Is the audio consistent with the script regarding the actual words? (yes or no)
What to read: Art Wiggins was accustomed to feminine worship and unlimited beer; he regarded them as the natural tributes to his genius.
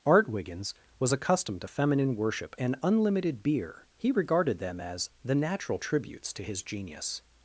yes